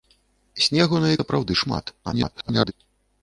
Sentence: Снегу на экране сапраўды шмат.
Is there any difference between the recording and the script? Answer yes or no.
yes